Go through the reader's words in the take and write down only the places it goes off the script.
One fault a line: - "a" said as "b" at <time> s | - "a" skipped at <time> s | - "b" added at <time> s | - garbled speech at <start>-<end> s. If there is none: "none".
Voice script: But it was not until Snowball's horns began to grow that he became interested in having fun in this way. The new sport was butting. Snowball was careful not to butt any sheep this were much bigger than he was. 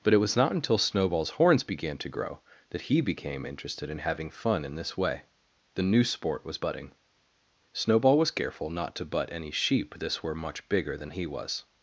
none